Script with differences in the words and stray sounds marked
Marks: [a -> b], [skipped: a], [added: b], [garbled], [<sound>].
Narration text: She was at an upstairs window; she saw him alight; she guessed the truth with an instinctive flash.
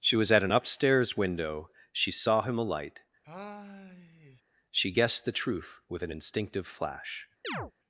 She was at an upstairs window; she saw him alight; [sigh] she guessed the truth with an instinctive flash. [chirp]